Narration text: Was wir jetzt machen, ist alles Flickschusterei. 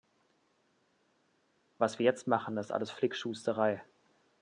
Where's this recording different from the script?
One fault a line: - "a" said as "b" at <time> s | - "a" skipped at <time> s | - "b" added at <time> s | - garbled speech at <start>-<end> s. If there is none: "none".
none